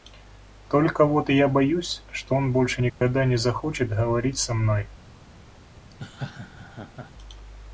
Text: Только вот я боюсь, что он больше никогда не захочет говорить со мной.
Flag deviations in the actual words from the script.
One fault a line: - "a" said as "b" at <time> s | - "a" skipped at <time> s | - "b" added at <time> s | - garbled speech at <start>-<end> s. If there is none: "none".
none